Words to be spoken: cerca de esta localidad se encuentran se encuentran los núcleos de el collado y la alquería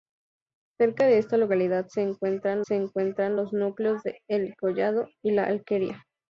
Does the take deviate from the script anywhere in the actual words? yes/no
no